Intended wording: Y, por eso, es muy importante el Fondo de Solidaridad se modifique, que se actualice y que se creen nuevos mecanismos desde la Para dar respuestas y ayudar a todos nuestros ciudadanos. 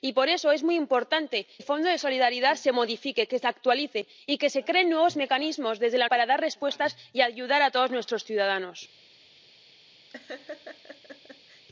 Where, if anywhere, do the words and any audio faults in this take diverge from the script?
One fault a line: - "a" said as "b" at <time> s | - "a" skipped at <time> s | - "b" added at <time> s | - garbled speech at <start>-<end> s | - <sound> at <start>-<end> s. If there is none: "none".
- laugh at 10.1-11.6 s